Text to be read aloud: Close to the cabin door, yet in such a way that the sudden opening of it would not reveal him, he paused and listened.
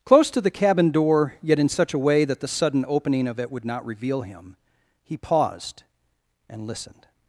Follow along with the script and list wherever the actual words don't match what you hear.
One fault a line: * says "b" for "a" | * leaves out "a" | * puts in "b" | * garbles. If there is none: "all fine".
all fine